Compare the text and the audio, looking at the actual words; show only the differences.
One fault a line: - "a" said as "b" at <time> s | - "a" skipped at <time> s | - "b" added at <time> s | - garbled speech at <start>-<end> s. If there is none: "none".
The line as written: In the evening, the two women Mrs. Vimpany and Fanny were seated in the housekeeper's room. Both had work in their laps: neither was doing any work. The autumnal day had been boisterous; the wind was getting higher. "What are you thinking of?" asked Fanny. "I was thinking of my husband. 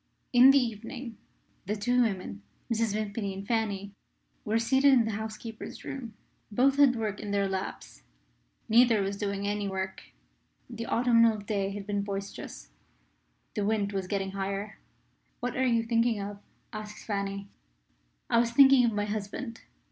none